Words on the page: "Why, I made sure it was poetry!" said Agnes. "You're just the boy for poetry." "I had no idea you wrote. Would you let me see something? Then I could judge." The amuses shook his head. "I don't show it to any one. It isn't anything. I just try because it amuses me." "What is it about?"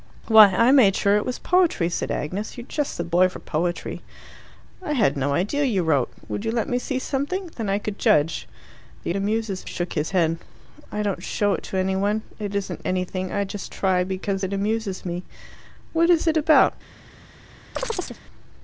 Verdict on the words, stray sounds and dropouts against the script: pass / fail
fail